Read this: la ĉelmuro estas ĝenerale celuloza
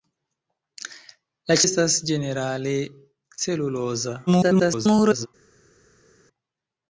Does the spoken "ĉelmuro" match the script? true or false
false